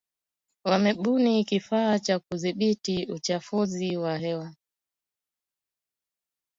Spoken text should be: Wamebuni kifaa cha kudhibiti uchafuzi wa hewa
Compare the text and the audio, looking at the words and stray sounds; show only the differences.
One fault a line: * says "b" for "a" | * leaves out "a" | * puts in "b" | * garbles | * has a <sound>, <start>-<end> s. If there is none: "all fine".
all fine